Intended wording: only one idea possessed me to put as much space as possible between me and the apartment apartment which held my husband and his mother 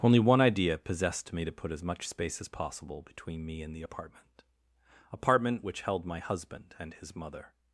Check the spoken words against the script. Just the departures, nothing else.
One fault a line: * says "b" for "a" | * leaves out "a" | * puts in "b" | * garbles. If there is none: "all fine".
all fine